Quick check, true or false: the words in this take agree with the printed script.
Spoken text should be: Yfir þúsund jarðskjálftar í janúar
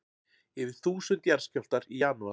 true